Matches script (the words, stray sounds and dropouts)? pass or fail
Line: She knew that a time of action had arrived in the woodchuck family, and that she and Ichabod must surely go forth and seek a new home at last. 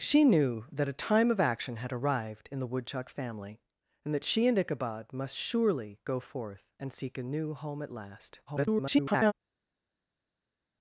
fail